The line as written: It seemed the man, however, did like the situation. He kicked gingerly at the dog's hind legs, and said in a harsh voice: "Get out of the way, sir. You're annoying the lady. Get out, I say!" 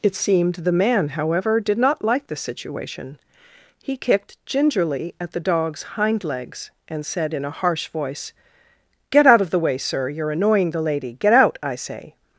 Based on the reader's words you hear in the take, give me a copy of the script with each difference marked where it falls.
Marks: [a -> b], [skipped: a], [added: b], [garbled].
It seemed the man, however, did [added: not] like the situation. He kicked gingerly at the dog's hind legs, and said in a harsh voice: "Get out of the way, sir. You're annoying the lady. Get out, I say!"